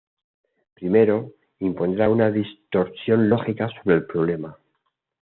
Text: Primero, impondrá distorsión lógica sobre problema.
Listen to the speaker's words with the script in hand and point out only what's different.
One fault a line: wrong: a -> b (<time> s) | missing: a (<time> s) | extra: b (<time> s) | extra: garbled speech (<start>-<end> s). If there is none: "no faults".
extra: una (2.1 s)
extra: el (3.9 s)